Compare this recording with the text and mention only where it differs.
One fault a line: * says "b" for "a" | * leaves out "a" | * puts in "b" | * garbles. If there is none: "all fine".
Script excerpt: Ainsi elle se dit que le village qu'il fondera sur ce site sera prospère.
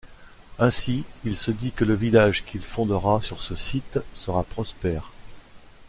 * says "il" for "elle"